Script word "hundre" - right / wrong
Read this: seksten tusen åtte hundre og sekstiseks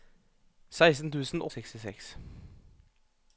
wrong